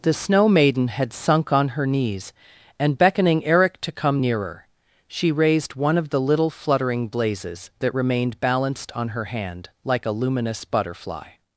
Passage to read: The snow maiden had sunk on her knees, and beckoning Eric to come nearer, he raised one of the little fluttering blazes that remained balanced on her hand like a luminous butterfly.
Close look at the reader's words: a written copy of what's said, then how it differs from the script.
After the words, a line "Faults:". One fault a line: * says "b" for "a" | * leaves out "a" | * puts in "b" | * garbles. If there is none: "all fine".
The snow maiden had sunk on her knees, and beckoning Eric to come nearer, she raised one of the little fluttering blazes that remained balanced on her hand like a luminous butterfly.
Faults:
* says "she" for "he"